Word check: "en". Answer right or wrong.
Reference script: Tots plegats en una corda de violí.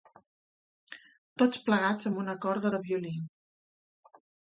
wrong